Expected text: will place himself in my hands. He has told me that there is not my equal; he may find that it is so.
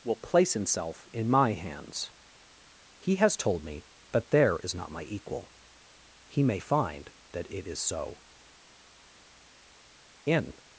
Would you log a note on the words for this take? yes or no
yes